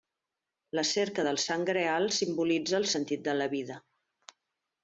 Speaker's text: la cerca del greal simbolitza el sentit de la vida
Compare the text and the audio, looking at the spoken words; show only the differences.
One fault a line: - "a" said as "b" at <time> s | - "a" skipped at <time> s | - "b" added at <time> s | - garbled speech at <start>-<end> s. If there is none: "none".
- "sant" added at 1.5 s